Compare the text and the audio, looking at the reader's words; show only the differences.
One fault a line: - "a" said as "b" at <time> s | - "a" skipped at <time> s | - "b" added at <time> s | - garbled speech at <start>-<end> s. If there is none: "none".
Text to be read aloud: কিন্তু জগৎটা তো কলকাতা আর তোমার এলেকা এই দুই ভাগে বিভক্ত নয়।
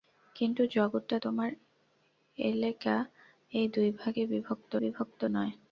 - "তো কলকাতা আর" skipped at 1.2 s
- "বিভক্ত" added at 4.8 s